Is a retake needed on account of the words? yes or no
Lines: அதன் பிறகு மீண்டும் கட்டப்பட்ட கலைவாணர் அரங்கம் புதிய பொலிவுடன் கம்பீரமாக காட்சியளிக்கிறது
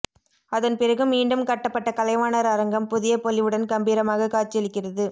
no